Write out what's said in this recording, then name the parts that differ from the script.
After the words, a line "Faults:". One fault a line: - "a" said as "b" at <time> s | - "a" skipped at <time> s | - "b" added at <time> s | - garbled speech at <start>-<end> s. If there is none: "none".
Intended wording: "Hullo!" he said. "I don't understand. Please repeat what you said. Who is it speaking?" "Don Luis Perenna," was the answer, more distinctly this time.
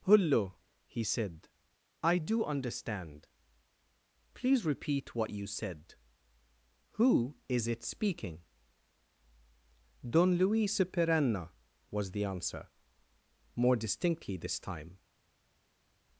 "Hullo!" he said. "I do understand. Please repeat what you said. Who is it speaking?" "Don Luis Perenna," was the answer, more distinctly this time.
Faults:
- "don't" said as "do" at 2.2 s